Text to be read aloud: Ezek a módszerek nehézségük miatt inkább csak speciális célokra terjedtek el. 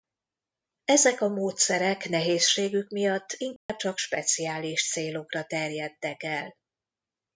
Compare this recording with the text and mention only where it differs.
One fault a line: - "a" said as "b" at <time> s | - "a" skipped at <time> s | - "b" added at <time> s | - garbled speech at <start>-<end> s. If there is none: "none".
none